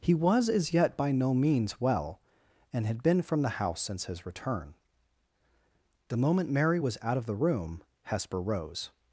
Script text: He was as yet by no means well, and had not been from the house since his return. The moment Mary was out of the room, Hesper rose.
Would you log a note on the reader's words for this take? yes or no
yes